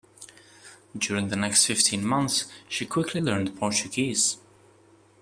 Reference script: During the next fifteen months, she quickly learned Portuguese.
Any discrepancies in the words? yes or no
no